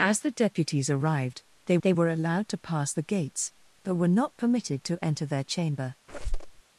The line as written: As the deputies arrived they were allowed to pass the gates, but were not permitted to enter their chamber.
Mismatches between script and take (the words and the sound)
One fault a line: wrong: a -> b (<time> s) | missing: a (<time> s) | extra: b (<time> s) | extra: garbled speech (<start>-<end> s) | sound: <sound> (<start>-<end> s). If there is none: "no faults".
extra: they (1.8 s)
sound: squeak (6.1-6.6 s)